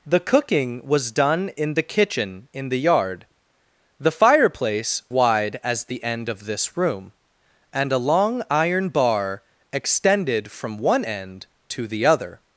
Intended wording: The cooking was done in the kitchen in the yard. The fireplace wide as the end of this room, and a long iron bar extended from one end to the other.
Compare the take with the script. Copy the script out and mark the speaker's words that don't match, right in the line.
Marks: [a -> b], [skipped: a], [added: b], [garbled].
The cooking was done in the kitchen in the yard. The fireplace wide as the end of this room, and a long iron bar extended from one end to the other.